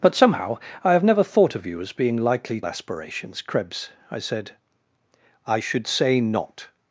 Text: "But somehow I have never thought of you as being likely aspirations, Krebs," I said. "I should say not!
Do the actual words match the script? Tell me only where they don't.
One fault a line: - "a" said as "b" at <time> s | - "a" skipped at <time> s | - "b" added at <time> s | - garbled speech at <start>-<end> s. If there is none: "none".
none